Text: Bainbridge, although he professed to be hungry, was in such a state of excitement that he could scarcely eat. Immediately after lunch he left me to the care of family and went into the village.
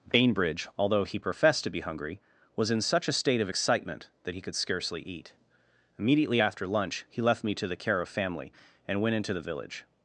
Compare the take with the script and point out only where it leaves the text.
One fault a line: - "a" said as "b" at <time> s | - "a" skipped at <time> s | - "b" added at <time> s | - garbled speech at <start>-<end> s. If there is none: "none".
none